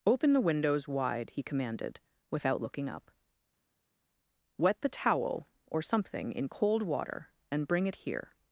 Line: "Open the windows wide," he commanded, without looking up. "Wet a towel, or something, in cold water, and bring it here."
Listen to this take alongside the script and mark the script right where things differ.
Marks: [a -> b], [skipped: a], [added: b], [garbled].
"Open the windows wide," he commanded, without looking up. "Wet [a -> the] towel, or something, in cold water, and bring it here."